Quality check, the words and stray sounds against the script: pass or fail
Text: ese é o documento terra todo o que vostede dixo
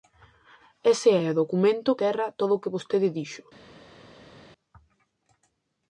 pass